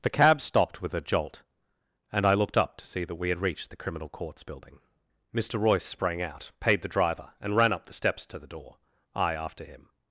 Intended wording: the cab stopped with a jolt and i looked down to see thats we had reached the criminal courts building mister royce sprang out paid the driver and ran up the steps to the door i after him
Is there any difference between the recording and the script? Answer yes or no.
yes